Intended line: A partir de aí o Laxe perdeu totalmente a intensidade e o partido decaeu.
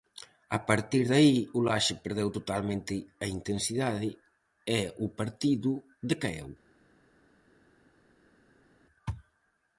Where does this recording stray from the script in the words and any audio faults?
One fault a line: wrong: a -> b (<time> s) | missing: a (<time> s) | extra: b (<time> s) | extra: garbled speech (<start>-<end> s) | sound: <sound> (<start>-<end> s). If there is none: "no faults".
no faults